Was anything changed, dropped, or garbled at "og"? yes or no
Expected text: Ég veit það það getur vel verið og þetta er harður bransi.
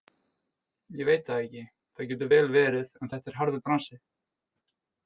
yes